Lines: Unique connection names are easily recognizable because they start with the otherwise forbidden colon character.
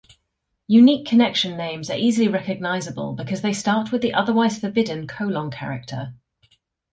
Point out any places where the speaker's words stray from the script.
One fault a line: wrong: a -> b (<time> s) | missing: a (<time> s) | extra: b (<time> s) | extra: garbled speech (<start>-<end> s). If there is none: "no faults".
no faults